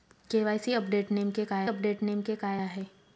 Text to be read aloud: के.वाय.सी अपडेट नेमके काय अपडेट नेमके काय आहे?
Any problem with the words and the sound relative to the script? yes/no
no